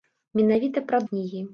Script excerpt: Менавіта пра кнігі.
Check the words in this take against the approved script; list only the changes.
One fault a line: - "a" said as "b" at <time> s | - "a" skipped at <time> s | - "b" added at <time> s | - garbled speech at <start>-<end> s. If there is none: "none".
none